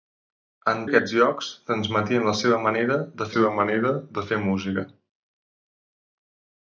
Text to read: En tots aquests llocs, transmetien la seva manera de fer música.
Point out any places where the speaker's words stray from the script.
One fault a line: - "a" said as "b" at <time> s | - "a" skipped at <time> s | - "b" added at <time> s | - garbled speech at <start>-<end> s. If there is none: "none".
- "tots" skipped at 0.8 s
- "seva manera de" added at 3.3 s